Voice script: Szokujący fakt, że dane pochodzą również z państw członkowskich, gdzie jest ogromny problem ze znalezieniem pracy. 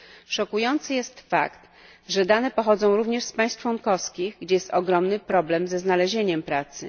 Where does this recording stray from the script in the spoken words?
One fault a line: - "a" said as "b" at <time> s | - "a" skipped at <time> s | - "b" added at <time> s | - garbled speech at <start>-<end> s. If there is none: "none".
- "jest" added at 0.9 s